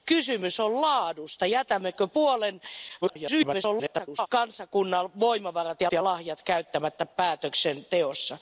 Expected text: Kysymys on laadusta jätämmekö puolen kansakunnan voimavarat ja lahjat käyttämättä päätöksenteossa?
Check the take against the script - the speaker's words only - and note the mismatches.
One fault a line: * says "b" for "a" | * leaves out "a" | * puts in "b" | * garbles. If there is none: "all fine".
* garbles
* puts in "ja"